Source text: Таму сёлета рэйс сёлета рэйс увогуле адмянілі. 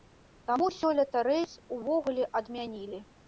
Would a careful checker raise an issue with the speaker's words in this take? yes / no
yes